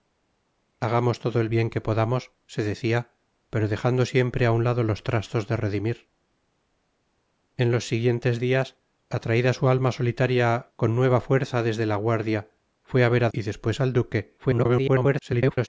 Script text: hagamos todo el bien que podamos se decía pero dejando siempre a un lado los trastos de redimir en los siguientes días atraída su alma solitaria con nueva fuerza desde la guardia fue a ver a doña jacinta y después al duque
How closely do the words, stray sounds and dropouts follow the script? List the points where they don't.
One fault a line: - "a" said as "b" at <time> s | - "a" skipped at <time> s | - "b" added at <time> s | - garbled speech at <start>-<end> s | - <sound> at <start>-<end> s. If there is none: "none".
- "doña jacinta" skipped at 13.3 s
- garbled speech at 14.4-15.7 s